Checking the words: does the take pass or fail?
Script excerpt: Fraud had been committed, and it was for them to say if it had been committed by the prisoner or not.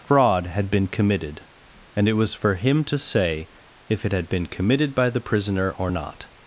fail